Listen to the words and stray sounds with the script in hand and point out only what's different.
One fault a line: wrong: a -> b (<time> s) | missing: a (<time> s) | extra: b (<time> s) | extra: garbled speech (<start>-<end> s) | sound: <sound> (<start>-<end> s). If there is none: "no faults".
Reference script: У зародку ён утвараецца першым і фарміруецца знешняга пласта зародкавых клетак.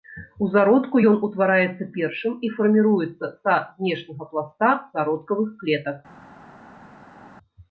extra: са (3.4 s)